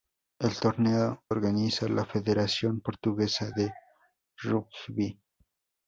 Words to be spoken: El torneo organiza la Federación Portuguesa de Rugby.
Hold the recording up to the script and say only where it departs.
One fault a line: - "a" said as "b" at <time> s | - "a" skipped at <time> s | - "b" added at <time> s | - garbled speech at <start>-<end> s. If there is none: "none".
none